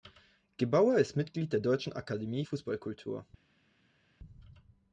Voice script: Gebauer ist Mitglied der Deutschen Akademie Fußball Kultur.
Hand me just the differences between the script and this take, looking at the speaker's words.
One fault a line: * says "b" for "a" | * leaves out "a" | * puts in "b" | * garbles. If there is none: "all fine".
all fine